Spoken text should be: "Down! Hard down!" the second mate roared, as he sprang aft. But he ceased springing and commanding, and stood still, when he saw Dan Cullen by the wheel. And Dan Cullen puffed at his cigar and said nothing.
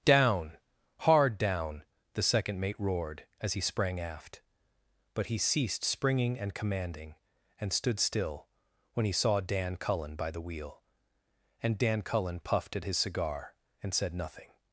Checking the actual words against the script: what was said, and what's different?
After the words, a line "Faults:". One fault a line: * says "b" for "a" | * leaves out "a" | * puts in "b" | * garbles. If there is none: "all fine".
"Down! Hard down!" the second mate roared, as he sprang aft. But he ceased springing and commanding, and stood still, when he saw Dan Cullen by the wheel. And Dan Cullen puffed at his cigar and said nothing.
Faults:
all fine